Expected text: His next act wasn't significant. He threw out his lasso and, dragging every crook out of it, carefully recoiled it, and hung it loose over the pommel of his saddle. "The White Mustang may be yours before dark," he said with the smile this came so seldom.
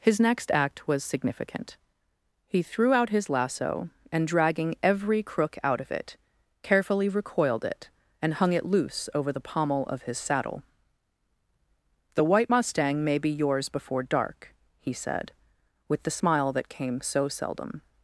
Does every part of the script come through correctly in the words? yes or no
no